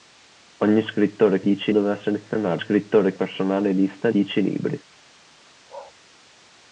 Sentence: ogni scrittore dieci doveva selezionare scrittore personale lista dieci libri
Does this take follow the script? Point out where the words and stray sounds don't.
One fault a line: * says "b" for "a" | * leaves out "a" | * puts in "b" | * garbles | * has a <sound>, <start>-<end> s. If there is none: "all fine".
* has a bark, 5.7-5.9 s